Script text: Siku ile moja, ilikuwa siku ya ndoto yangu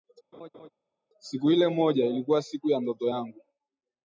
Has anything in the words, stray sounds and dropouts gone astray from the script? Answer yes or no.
yes